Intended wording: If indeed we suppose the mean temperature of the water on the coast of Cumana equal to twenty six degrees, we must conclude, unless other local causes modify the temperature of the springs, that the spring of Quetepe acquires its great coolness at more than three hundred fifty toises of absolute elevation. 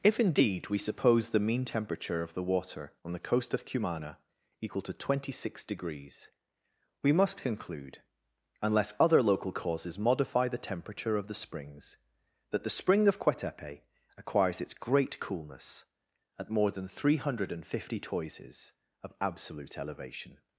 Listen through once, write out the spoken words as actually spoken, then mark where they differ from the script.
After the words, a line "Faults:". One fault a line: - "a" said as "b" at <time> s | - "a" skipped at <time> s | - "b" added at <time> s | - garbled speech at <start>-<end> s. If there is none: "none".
If indeed we suppose the mean temperature of the water on the coast of Cumana equal to twenty six degrees, we must conclude, unless other local causes modify the temperature of the springs, that the spring of Quetepe acquires its great coolness at more than three hundred fifty toises of absolute elevation.
Faults:
none